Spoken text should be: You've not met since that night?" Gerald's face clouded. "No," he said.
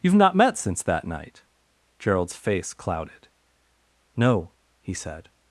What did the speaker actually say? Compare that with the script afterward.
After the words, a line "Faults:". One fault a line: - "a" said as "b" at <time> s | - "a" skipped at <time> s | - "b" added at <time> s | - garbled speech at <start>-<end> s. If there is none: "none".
You've not met since that night?" Gerald's face clouded. "No," he said.
Faults:
none